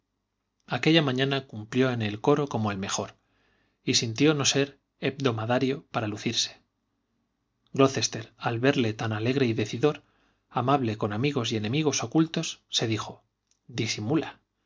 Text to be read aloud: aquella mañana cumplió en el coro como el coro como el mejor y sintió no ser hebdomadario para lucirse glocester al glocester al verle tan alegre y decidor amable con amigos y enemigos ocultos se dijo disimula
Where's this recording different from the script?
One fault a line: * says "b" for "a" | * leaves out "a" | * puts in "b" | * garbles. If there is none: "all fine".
* leaves out "coro como el"
* leaves out "glocester al"